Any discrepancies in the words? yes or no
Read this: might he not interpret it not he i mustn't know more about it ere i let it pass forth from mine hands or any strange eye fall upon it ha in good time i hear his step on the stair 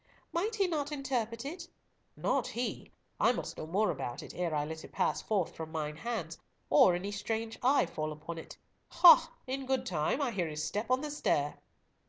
yes